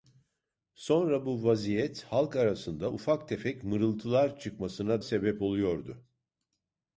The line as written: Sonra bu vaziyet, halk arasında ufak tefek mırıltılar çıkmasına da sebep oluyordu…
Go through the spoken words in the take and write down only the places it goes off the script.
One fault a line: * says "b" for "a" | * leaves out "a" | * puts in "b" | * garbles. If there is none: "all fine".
* leaves out "da"